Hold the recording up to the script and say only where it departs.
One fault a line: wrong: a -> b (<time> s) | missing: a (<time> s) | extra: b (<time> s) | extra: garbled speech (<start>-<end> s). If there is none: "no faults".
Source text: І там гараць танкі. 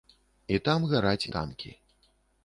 no faults